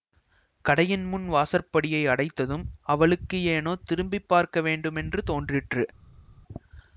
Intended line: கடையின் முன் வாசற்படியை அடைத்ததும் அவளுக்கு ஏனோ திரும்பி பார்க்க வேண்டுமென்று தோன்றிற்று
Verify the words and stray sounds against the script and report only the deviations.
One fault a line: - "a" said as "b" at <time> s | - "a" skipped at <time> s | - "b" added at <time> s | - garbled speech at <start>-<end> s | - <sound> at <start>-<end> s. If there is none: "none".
none